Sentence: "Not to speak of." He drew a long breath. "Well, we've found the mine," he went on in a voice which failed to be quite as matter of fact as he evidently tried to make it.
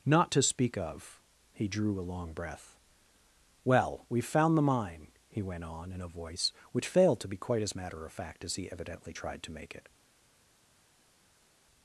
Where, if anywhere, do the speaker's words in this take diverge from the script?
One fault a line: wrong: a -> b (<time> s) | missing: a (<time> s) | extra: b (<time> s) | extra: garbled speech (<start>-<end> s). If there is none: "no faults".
no faults